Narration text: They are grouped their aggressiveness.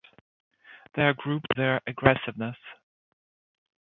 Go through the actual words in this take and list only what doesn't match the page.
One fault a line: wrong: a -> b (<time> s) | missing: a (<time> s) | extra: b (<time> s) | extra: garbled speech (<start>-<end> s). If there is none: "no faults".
no faults